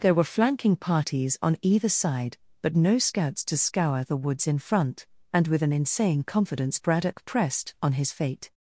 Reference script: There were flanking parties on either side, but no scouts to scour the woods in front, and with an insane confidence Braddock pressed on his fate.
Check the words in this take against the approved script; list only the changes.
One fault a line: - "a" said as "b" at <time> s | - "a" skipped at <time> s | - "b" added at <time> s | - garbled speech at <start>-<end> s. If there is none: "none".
none